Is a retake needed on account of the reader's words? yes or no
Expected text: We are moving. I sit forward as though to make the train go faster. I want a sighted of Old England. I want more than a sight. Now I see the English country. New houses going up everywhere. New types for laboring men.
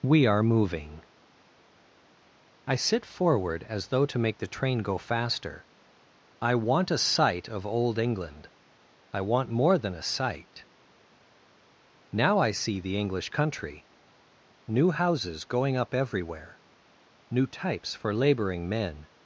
yes